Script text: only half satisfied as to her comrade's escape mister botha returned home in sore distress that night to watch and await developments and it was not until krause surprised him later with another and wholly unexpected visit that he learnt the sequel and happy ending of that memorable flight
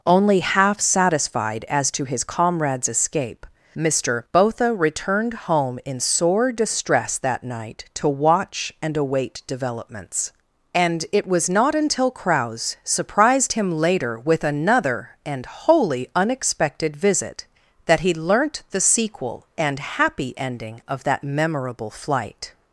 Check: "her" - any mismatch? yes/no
yes